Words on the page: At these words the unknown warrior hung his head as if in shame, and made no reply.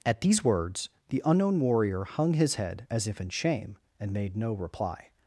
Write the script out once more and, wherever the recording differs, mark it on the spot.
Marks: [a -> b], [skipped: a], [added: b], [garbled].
At these words the unknown warrior hung his head as if in shame, and made no reply.